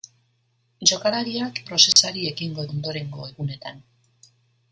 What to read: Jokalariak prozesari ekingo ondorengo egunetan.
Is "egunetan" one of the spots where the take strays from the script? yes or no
no